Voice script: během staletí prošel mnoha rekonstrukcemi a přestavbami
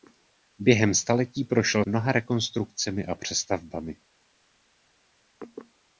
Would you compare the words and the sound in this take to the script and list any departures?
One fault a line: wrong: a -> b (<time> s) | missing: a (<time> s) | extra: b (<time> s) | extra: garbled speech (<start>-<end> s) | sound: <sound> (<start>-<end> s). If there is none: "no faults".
no faults